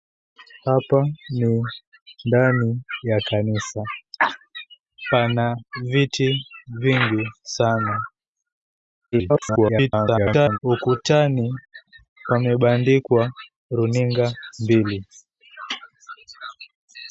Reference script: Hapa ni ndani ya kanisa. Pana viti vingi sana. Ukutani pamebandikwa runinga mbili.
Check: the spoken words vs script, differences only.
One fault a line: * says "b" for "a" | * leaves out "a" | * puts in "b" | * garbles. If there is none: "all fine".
* garbles